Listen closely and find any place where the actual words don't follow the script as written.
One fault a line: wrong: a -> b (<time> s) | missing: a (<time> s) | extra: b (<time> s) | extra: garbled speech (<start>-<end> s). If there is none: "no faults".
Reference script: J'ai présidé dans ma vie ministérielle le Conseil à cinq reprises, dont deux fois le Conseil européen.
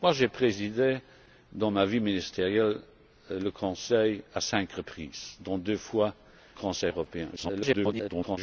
missing: le (6.1 s)
extra: garbled speech (7.4-8.4 s)